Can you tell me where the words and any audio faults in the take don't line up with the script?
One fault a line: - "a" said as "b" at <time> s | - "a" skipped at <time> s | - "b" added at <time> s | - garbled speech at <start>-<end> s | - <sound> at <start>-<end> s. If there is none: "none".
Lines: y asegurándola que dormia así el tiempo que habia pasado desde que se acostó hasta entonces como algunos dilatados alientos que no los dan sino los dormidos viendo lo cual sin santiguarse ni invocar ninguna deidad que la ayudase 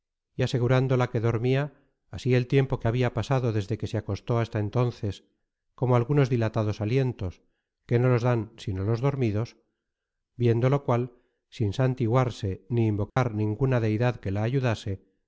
- dropout at 13.1-13.2 s